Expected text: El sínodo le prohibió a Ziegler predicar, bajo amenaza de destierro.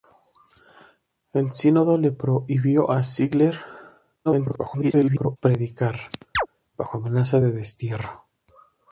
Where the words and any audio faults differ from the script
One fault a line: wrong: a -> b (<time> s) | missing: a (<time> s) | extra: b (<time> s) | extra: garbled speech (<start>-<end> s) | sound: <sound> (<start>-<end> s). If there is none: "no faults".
extra: garbled speech (4.2-5.4 s)
sound: chirp (6.3-6.5 s)